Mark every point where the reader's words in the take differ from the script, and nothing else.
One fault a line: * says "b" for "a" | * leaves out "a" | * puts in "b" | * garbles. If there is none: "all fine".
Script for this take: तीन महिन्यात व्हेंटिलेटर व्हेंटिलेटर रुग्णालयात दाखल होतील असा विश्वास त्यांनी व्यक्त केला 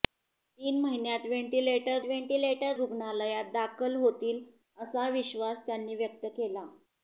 all fine